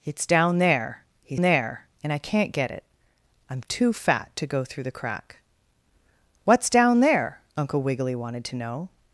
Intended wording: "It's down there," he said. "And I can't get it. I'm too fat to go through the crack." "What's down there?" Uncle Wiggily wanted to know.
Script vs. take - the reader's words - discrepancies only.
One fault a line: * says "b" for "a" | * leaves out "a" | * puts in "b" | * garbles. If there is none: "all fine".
* says "there" for "said"